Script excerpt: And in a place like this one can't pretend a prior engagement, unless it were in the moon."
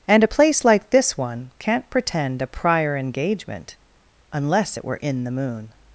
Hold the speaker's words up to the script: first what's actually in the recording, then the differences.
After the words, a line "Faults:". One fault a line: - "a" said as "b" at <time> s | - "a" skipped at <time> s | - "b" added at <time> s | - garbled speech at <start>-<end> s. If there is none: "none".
And a place like this one can't pretend a prior engagement, unless it were in the moon."
Faults:
- "in" skipped at 0.2 s